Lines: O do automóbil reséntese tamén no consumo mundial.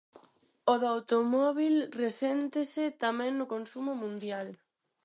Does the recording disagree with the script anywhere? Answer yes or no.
no